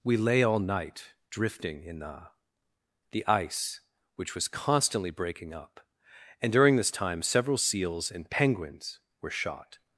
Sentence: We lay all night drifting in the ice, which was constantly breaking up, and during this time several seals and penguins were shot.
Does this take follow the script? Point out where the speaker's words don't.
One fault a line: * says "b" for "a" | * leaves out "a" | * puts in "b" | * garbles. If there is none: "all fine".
* puts in "the"